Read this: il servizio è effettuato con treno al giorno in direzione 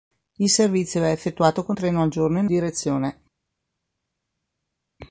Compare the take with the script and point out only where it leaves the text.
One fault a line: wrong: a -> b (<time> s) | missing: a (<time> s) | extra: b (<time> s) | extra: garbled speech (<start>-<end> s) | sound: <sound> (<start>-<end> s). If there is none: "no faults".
no faults